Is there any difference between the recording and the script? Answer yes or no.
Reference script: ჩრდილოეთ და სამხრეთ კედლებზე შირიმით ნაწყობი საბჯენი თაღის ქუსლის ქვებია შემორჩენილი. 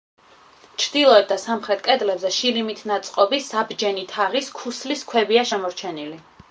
no